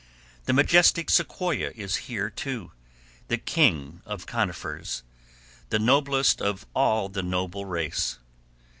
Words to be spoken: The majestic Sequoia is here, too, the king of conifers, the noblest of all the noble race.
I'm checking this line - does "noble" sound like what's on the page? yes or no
yes